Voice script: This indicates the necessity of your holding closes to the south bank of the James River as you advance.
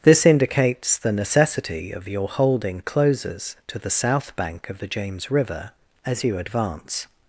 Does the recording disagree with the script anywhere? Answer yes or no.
no